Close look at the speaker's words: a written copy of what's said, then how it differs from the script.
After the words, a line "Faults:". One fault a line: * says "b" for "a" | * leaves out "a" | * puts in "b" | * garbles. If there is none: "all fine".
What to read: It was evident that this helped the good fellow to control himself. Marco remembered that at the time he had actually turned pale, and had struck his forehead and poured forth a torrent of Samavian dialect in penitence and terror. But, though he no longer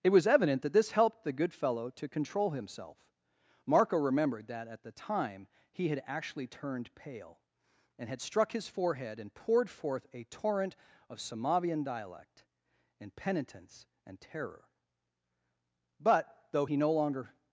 It was evident that this helped the good fellow to control himself. Marco remembered that at the time he had actually turned pale, and had struck his forehead and poured forth a torrent of Samavian dialect in penitence and terror. But, though he no longer
Faults:
all fine